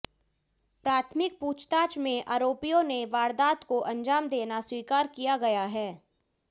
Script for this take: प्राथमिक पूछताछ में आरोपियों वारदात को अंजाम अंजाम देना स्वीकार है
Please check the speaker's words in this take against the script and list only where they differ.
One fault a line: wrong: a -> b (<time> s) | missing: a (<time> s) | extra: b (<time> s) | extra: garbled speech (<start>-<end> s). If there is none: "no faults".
extra: ने (2.8 s)
missing: अंजाम (4.3 s)
extra: किया गया (5.2 s)